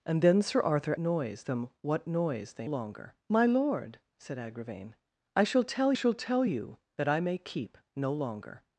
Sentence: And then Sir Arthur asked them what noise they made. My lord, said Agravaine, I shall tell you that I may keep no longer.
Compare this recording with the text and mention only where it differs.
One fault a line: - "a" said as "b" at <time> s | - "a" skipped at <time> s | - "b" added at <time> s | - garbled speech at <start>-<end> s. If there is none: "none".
- "asked" said as "noise" at 1.0 s
- "made" said as "longer" at 2.6 s
- "shall tell" added at 5.9 s